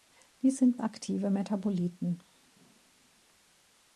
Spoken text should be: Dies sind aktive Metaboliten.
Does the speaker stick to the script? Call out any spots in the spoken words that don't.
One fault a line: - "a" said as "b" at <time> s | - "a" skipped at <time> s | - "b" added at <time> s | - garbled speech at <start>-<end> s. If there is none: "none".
none